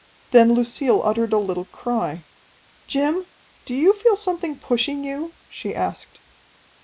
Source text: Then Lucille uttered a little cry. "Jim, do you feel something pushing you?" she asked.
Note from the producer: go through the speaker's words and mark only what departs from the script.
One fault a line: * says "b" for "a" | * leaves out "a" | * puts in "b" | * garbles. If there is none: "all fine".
all fine